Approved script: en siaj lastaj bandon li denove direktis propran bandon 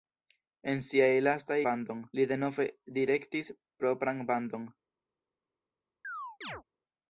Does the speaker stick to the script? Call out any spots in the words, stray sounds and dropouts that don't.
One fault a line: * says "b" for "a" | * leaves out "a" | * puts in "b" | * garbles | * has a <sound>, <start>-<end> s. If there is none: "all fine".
* has a chirp, 6.0-6.6 s